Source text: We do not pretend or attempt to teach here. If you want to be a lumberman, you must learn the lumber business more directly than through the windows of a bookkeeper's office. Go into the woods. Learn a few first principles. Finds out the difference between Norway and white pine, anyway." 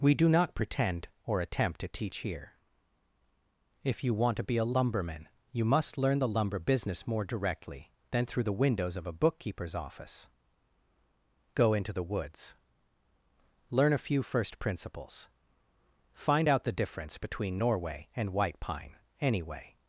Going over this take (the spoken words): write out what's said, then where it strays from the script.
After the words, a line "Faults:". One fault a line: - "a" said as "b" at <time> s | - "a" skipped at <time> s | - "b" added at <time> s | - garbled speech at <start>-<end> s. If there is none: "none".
We do not pretend or attempt to teach here. If you want to be a lumberman, you must learn the lumber business more directly than through the windows of a bookkeeper's office. Go into the woods. Learn a few first principles. Find out the difference between Norway and white pine, anyway."
Faults:
- "Finds" said as "Find" at 16.1 s